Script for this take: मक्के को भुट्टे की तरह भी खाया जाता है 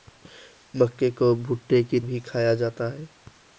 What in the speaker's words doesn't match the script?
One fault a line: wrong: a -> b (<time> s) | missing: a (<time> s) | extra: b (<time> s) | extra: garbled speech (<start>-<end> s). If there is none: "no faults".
missing: तरह (2.0 s)